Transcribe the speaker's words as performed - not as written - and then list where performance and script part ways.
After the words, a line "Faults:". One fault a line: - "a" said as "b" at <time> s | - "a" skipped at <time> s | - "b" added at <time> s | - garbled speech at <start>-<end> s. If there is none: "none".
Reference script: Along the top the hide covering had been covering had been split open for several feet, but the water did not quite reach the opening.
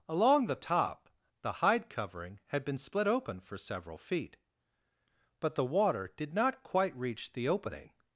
Along the top the hide covering had been split open for several feet, but the water did not quite reach the opening.
Faults:
- "covering had been" skipped at 2.8 s